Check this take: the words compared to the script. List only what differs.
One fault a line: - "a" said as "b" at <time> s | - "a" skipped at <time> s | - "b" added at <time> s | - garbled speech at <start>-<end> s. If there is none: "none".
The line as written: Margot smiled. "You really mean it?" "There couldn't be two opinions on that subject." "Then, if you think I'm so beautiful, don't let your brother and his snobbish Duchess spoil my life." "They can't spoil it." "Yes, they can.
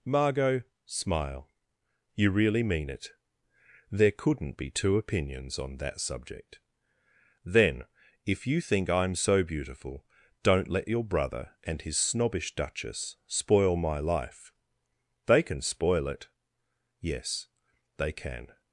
- "smiled" said as "smile" at 0.8 s
- "can't" said as "can" at 15.4 s